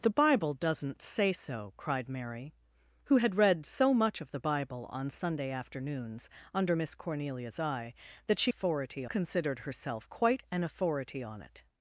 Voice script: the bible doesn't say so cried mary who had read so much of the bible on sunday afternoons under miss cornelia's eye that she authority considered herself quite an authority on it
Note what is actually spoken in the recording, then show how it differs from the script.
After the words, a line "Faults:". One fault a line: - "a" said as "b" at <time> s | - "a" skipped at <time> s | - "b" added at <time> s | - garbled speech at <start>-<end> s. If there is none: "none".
the bible doesn't say so cried mary who had read so much of the bible on sunday afternoons under miss cornelia's eye that she authority considered herself quite an authority on it
Faults:
none